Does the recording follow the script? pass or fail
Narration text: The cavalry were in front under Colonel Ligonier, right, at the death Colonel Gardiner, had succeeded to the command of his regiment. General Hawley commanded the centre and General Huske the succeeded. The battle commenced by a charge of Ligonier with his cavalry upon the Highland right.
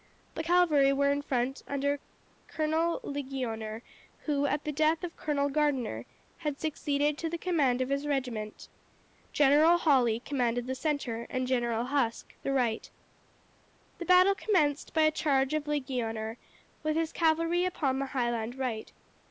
fail